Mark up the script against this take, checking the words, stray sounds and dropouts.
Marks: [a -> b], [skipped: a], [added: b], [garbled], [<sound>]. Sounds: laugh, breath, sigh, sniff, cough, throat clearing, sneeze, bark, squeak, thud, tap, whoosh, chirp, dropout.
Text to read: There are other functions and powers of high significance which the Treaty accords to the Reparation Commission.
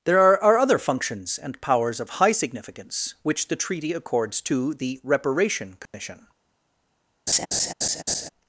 There are [added: are] other functions and powers of high significance which the Treaty accords to the Reparation Commission. [dropout] [laugh]